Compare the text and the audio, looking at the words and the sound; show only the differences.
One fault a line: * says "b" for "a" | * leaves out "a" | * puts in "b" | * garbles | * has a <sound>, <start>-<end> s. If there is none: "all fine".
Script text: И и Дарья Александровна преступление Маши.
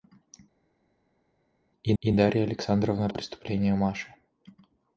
all fine